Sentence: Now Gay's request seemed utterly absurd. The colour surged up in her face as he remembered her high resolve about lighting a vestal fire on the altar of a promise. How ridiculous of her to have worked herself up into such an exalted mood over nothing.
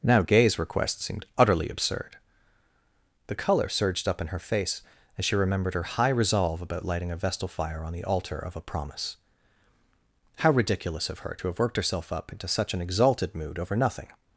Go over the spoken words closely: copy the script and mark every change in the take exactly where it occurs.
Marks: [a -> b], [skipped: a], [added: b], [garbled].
Now Gay's request seemed utterly absurd. The colour surged up in her face as [he -> she] remembered her high resolve about lighting a vestal fire on the altar of a promise. How ridiculous of her to have worked herself up into such an exalted mood over nothing.